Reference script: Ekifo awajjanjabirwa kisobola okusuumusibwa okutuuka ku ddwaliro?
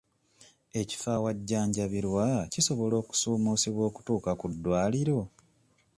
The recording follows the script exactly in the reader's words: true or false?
true